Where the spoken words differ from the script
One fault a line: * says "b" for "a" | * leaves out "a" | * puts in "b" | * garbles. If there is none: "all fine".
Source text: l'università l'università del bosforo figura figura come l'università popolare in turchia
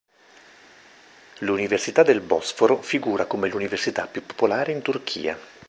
* leaves out "l'università"
* leaves out "figura"
* puts in "più"